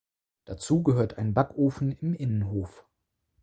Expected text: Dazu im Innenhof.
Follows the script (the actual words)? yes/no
no